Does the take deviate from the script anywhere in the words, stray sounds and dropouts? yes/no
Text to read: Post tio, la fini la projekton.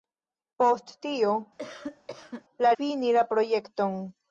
yes